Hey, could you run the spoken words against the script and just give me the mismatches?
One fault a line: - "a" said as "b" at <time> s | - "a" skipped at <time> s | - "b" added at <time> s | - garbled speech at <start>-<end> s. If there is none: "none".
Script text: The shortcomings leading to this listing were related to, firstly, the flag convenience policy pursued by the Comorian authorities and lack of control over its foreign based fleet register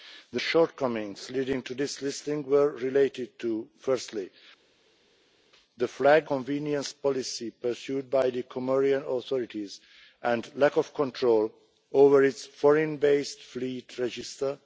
none